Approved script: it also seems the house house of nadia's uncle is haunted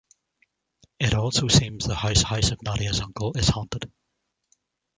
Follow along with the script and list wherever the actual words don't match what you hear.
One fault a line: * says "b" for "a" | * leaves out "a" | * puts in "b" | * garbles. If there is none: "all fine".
all fine